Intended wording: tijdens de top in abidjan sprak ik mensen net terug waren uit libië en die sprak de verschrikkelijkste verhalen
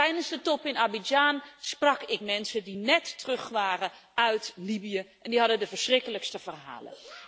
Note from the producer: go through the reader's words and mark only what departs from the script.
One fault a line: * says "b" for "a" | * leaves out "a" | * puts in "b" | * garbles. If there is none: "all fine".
* puts in "die"
* says "hadden" for "sprak"